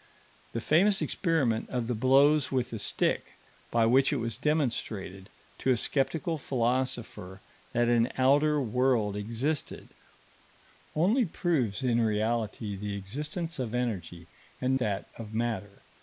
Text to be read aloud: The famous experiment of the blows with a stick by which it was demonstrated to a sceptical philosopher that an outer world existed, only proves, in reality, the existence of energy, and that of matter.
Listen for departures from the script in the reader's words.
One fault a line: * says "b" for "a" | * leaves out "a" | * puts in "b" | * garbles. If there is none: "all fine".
all fine